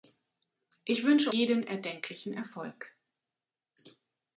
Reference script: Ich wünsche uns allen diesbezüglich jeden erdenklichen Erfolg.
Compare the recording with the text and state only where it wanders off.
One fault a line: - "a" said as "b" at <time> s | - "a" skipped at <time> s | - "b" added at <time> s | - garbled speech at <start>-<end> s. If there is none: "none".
- "uns allen diesbezüglich" skipped at 1.3 s